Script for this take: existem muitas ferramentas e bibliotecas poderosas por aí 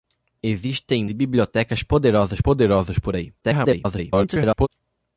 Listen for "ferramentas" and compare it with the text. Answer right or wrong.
wrong